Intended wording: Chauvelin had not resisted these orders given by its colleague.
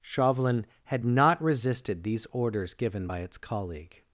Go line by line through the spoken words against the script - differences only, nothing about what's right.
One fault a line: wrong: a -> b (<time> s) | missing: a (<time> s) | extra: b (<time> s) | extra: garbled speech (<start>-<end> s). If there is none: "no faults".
no faults